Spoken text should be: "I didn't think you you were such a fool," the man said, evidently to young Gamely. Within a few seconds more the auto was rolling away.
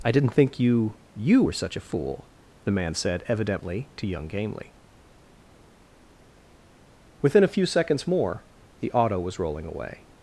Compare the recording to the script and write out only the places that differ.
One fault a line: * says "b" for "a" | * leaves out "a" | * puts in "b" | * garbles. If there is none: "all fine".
all fine